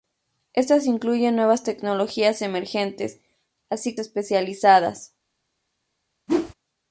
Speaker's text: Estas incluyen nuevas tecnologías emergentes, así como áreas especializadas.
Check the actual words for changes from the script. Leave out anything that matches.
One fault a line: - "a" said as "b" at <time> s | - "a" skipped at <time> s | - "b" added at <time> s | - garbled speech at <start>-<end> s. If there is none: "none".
- "como áreas" skipped at 4.0 s